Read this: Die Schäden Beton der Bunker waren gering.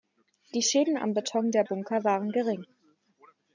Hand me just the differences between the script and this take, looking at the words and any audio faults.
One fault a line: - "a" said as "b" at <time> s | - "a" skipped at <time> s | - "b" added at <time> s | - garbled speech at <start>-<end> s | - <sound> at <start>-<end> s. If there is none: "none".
- "am" added at 1.0 s